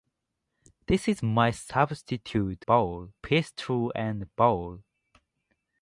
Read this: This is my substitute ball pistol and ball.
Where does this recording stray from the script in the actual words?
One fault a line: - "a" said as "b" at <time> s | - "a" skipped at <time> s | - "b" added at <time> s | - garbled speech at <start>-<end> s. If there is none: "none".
none